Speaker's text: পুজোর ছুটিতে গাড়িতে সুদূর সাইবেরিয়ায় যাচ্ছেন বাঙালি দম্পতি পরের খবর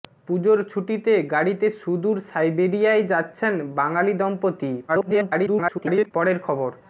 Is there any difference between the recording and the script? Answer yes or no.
yes